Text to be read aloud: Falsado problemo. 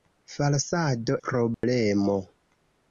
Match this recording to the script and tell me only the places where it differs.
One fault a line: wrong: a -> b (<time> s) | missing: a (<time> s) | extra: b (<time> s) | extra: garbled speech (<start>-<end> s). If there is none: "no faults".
no faults